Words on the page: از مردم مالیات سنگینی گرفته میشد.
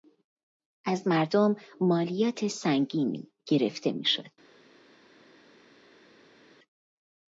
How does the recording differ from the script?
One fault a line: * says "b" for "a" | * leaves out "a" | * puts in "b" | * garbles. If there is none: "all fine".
all fine